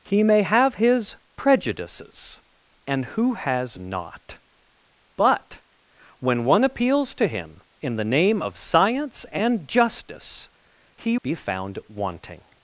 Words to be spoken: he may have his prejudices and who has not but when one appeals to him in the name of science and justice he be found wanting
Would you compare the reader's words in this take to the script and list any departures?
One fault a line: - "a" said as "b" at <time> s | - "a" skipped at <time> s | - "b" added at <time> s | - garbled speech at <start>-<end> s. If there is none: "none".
none